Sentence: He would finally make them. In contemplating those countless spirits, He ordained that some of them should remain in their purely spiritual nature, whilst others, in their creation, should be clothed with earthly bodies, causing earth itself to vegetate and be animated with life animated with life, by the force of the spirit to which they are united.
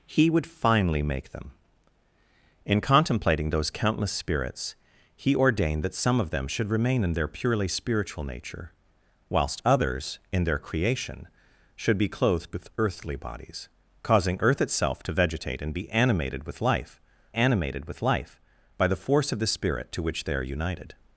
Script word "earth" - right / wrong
right